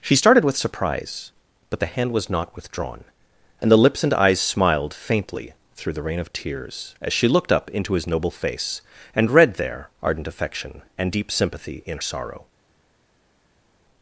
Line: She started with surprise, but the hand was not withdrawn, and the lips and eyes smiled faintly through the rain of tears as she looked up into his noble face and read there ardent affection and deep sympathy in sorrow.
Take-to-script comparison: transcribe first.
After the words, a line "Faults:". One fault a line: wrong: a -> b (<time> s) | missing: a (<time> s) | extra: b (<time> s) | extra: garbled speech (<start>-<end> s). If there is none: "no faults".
She started with surprise, but the hand was not withdrawn, and the lips and eyes smiled faintly through the rain of tears as she looked up into his noble face and read there ardent affection and deep sympathy in sorrow.
Faults:
no faults